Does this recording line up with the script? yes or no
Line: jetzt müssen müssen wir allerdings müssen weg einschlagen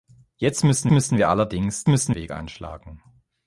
yes